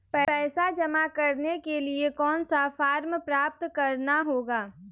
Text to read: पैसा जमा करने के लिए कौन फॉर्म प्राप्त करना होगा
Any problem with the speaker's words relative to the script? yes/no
yes